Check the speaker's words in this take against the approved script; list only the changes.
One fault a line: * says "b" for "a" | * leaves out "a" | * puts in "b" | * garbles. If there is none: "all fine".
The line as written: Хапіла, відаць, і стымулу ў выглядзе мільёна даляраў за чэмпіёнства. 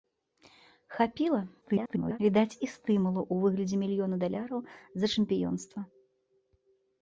* garbles